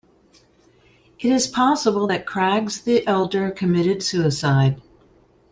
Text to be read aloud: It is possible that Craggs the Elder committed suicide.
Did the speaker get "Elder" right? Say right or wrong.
right